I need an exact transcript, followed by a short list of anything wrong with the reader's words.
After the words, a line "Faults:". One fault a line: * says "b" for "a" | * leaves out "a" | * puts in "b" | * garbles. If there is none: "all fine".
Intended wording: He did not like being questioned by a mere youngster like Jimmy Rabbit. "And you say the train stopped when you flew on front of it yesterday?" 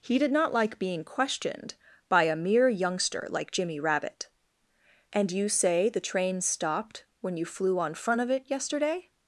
He did not like being questioned by a mere youngster like Jimmy Rabbit. "And you say the train stopped when you flew on front of it yesterday?"
Faults:
all fine